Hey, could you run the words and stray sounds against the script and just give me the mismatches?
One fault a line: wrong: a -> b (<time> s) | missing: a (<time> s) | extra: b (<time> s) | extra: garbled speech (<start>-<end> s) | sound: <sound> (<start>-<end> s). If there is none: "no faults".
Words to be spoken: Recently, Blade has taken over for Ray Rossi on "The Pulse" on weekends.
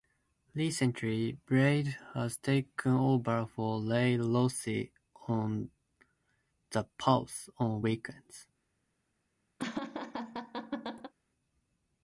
sound: laugh (9.6-11.1 s)